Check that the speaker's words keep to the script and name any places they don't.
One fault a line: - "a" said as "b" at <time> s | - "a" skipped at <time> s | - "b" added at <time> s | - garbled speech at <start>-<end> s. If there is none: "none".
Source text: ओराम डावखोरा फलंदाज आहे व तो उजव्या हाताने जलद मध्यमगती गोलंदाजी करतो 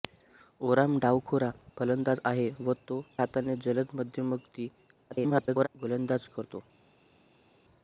- "उजव्या" skipped at 3.0 s
- garbled speech at 5.1-5.7 s